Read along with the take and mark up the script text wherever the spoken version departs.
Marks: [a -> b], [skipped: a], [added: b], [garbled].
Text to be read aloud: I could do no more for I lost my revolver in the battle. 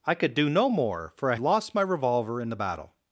I could do no more for I lost my revolver in the battle.